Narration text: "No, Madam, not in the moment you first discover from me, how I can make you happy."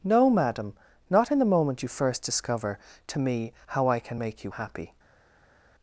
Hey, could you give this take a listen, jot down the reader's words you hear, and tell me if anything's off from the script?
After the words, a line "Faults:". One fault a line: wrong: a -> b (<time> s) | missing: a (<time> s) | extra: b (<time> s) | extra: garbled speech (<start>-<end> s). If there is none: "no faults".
"No, Madam, not in the moment you first discover to me, how I can make you happy."
Faults:
wrong: from -> to (3.1 s)